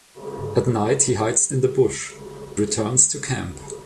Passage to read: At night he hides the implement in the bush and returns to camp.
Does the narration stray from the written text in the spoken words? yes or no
yes